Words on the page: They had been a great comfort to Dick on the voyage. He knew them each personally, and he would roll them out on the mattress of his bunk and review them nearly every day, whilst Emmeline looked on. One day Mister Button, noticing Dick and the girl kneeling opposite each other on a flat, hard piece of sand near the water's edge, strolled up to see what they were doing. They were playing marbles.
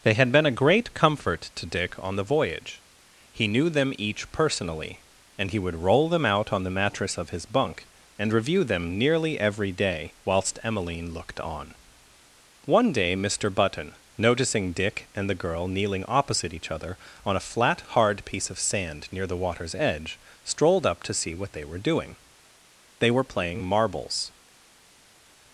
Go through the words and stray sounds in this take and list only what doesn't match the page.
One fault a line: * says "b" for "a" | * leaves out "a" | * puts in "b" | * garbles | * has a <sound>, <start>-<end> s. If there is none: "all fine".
all fine